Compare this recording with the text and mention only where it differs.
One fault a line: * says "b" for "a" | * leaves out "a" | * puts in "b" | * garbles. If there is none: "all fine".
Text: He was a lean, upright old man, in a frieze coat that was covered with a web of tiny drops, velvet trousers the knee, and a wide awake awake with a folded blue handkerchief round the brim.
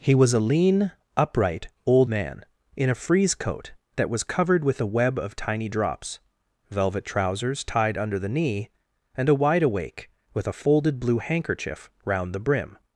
* puts in "tied under"
* leaves out "awake"